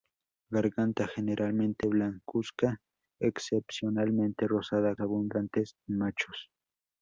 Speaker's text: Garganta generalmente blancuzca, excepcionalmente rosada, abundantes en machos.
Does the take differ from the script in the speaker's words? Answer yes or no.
no